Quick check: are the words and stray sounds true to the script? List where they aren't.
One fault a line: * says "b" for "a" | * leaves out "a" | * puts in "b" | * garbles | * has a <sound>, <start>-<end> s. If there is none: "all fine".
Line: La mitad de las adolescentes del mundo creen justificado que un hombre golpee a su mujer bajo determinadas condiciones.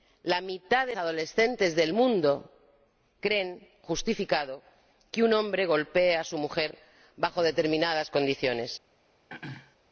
* leaves out "las"
* has a throat clearing, 9.3-9.8 s